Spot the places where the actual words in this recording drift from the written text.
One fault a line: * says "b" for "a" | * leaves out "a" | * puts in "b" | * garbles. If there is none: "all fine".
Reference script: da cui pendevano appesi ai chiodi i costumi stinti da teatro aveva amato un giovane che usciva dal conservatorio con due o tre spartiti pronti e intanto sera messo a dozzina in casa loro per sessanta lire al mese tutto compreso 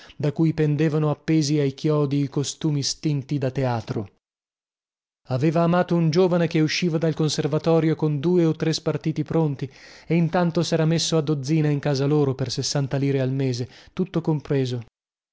all fine